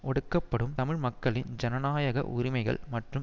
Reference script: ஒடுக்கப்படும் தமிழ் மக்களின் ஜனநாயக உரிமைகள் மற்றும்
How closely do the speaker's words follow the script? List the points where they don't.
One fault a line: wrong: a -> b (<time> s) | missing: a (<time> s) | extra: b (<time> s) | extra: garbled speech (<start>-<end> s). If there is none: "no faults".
no faults